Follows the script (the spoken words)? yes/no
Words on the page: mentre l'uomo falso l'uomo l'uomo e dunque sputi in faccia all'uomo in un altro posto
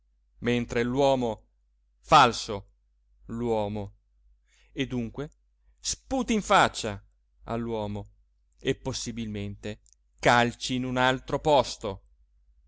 no